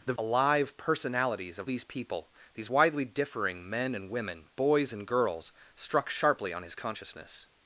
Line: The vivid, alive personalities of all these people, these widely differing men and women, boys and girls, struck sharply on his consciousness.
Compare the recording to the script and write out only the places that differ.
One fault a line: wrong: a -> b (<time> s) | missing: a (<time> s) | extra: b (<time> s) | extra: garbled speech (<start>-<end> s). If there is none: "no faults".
missing: vivid (0.1 s)
missing: all (1.7 s)